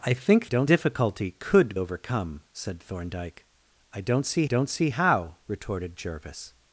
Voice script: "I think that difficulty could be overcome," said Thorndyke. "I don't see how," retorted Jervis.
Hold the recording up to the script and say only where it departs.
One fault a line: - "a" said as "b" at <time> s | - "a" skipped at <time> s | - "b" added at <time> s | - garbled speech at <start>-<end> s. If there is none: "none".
- "that" said as "don't" at 0.4 s
- "be" skipped at 1.7 s
- "don't see" added at 4.4 s